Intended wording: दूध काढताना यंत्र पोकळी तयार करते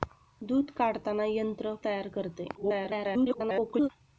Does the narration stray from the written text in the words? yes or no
yes